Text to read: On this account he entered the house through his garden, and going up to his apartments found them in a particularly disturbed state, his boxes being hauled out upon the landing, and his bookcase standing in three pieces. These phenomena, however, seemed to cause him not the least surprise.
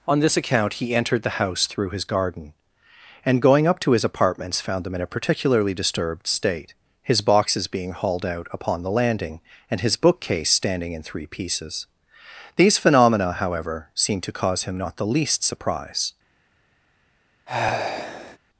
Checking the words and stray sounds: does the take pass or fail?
fail